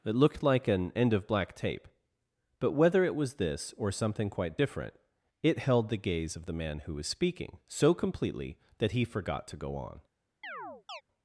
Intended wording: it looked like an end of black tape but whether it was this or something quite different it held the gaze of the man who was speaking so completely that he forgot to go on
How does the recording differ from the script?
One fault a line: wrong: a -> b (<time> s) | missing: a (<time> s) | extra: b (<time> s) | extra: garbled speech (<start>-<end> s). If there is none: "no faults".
no faults